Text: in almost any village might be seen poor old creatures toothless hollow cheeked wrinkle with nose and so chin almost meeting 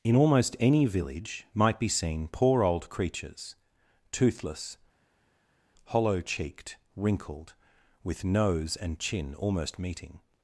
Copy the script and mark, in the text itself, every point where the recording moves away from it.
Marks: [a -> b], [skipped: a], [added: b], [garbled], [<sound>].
in almost any village might be seen poor old creatures toothless hollow cheeked [wrinkle -> wrinkled] with nose and [skipped: so] chin almost meeting